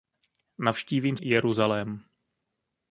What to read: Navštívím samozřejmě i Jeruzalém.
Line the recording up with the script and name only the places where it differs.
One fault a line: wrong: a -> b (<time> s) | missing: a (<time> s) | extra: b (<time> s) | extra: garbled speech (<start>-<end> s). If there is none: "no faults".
missing: samozřejmě (1.2 s)